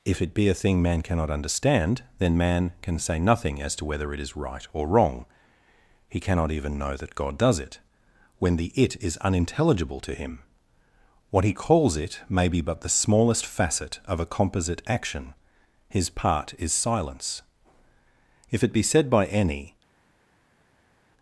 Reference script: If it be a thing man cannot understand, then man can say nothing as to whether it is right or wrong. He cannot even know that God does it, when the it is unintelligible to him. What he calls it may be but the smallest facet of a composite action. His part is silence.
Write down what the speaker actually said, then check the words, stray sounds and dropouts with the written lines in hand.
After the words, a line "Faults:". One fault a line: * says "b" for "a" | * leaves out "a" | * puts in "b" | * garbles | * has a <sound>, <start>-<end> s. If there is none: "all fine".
If it be a thing man cannot understand, then man can say nothing as to whether it is right or wrong. He cannot even know that God does it, when the it is unintelligible to him. What he calls it may be but the smallest facet of a composite action. His part is silence. If it be said by any
Faults:
* puts in "If it be said by any"